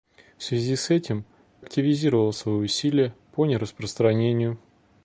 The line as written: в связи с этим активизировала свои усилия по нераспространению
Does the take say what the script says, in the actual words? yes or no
yes